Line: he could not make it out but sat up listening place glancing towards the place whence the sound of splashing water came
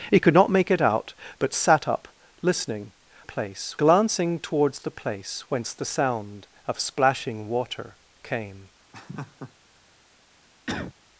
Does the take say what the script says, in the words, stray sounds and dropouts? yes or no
no